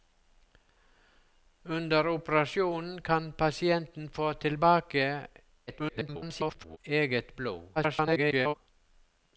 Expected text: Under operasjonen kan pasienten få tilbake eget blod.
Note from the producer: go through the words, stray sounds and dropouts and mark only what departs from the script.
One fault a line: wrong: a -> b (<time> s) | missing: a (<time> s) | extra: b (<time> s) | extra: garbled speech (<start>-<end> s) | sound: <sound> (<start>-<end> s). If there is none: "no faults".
extra: garbled speech (5.7-6.8 s)
extra: garbled speech (7.8-8.5 s)